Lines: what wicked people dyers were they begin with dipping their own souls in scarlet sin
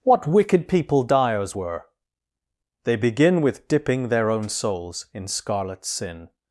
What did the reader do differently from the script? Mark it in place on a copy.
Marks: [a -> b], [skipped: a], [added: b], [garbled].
what wicked people dyers were they begin with dipping their own souls in scarlet sin